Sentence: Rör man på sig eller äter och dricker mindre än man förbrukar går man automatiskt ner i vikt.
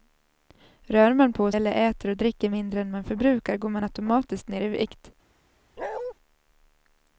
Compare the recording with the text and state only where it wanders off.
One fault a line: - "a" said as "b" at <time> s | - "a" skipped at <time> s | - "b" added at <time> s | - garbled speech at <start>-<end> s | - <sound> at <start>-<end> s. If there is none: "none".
- "sig" skipped at 1.5 s
- bark at 5.8-6.1 s